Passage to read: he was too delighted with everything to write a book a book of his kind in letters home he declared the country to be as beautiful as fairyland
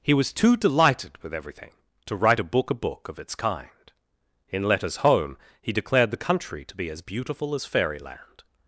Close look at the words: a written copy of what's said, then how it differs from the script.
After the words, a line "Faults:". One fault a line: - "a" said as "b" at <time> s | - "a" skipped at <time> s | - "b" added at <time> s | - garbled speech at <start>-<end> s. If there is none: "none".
he was too delighted with everything to write a book a book of its kind in letters home he declared the country to be as beautiful as fairyland
Faults:
- "his" said as "its" at 3.2 s